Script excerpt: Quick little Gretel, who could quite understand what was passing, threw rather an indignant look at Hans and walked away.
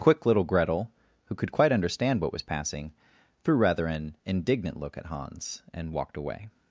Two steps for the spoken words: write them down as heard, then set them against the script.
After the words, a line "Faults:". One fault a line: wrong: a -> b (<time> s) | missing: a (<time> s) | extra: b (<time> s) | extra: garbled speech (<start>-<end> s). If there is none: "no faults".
Quick little Gretel, who could quite understand what was passing, threw rather an indignant look at Hans and walked away.
Faults:
no faults